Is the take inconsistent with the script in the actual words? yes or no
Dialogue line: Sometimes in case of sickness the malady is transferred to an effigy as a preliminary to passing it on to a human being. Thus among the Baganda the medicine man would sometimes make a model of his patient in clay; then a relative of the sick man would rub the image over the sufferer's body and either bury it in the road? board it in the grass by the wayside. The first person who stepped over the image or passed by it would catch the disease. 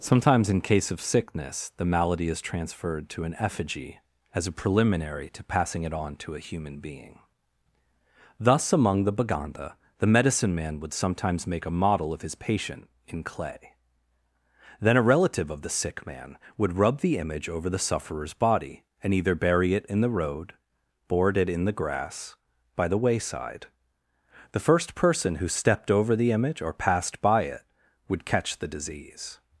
no